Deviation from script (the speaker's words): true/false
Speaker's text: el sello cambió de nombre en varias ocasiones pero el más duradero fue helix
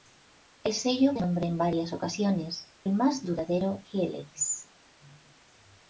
true